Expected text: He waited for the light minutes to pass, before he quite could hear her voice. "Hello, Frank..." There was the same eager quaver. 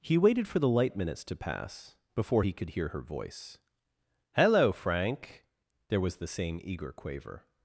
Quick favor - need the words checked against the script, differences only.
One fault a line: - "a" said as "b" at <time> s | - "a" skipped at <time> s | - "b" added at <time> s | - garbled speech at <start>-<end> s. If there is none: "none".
- "quite" skipped at 2.5 s